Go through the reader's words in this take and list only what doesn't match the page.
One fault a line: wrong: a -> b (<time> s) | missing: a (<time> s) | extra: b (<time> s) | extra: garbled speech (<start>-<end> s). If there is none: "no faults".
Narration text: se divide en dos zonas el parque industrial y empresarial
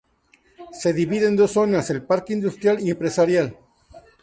no faults